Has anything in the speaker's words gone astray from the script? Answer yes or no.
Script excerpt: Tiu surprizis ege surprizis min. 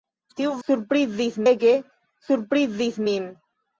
no